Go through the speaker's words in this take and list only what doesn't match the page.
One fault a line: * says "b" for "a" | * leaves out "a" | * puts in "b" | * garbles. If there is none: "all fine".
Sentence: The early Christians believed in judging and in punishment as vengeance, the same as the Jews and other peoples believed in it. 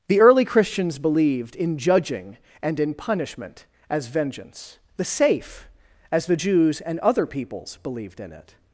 * says "safe" for "same"